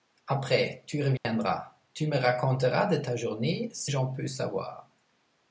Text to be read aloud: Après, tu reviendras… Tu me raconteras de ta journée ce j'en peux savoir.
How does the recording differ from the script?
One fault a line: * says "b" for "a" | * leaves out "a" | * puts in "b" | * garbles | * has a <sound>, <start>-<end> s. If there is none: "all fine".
* has a dropout, 1.2-1.2 s